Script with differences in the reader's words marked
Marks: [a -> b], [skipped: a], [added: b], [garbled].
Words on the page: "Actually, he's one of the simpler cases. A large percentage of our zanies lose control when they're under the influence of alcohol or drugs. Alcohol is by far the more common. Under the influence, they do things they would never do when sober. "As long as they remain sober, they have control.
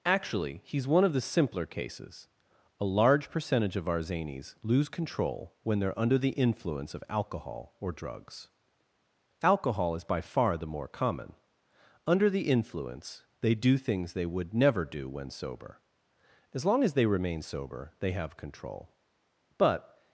"Actually, he's one of the simpler cases. A large percentage of our zanies lose control when they're under the influence of alcohol or drugs. Alcohol is by far the more common. Under the influence, they do things they would never do when sober. "As long as they remain sober, they have control. [added: But]